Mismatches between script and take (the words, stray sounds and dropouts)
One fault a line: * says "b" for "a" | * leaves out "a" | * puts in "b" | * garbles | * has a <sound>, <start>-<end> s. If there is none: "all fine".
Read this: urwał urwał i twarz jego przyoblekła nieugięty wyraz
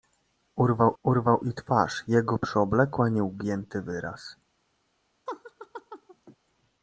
* has a laugh, 5.3-6.4 s